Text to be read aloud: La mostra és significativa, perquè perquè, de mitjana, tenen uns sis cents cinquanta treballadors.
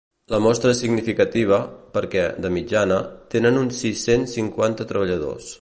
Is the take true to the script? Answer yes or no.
no